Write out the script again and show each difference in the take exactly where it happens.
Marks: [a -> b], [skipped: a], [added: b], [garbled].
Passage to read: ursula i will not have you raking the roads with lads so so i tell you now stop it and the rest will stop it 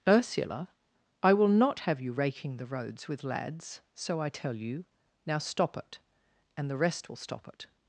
ursula i will not have you raking the roads with lads so [skipped: so] i tell you now stop it and the rest will stop it